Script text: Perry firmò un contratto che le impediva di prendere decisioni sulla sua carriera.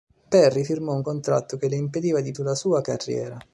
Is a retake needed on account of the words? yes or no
yes